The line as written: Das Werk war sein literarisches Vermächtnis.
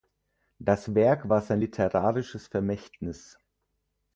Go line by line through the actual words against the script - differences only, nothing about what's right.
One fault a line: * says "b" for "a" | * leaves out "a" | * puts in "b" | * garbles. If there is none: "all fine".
all fine